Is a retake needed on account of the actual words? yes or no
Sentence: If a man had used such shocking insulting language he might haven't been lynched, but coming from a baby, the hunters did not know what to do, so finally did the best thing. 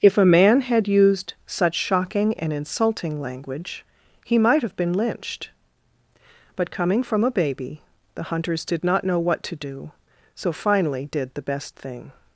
yes